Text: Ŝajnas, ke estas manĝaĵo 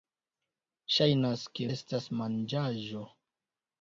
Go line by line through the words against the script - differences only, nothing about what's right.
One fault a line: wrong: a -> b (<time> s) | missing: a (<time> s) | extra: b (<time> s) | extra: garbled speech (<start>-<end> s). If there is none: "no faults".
no faults